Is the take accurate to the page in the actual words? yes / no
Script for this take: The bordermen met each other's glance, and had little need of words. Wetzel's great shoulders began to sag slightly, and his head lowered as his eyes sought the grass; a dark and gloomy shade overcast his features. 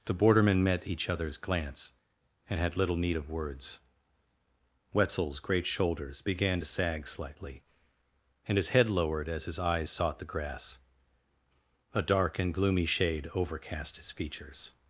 yes